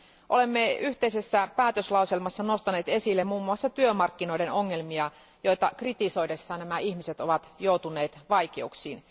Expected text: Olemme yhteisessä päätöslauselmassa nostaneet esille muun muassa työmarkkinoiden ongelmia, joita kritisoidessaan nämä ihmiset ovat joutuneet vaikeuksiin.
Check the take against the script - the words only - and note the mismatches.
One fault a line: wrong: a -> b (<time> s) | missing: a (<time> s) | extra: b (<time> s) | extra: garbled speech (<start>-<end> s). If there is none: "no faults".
no faults